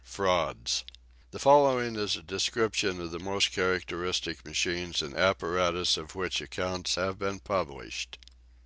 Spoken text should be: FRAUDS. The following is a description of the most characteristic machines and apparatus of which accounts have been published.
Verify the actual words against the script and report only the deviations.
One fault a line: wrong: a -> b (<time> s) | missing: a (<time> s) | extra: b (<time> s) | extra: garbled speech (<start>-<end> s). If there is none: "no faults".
no faults